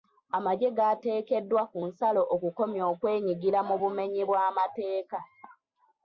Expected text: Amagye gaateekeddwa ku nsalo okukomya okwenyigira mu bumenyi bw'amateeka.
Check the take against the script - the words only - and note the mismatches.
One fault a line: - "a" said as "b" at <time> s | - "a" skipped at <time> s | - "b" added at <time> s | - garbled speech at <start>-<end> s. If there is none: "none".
none